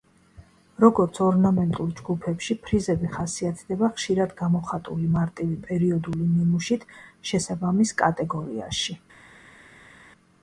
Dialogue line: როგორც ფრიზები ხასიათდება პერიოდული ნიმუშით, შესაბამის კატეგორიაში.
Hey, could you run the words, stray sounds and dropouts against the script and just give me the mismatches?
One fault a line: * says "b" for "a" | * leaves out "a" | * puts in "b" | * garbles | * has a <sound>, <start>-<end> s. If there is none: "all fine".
* puts in "ორნამენტულ ჯგუფებში"
* puts in "ხშირად გამოხატული მარტივი"